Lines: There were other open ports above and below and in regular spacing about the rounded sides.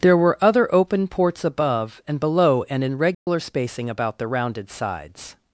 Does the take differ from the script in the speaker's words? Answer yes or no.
no